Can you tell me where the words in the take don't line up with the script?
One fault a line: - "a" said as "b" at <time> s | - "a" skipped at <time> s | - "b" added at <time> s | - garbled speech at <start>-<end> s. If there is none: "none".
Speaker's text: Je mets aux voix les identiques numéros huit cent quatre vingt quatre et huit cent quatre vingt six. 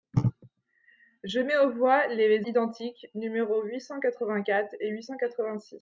none